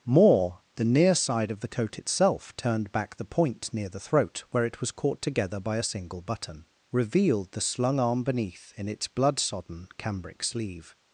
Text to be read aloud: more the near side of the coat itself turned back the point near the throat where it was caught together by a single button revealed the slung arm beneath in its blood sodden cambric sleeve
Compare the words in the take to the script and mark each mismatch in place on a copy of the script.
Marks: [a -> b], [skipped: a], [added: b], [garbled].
more the near side of the coat itself turned back the point near the throat where it was caught together by a single button revealed the slung arm beneath in its blood sodden cambric sleeve